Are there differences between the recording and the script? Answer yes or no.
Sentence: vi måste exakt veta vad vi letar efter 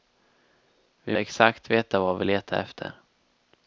yes